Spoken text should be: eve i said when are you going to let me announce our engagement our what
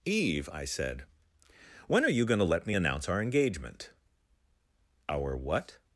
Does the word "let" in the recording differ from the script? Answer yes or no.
no